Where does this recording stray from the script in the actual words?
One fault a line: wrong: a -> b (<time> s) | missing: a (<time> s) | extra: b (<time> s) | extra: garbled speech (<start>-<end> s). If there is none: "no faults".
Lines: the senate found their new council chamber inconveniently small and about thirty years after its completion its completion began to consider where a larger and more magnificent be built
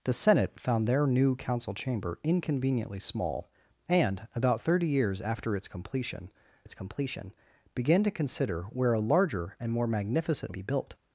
no faults